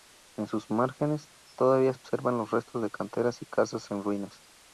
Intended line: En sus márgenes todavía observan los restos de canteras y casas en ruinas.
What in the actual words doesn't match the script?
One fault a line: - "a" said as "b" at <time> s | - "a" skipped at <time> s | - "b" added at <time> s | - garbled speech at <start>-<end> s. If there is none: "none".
none